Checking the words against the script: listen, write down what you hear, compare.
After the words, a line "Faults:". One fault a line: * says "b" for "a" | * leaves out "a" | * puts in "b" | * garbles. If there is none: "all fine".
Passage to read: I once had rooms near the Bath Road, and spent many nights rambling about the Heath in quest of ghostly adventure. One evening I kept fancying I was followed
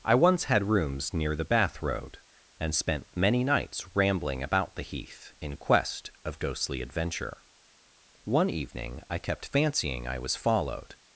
I once had rooms near the Bath Road, and spent many nights rambling about the Heath in quest of ghostly adventure. One evening I kept fancying I was followed
Faults:
all fine